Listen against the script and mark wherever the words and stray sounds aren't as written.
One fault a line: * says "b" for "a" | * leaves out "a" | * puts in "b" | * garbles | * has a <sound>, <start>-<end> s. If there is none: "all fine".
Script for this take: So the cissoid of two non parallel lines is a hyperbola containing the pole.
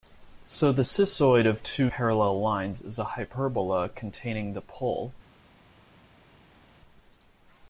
* leaves out "non"